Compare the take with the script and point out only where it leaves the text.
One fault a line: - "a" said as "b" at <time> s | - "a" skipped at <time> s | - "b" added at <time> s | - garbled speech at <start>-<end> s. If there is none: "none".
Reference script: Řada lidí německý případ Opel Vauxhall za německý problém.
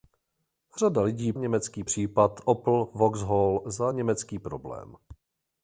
none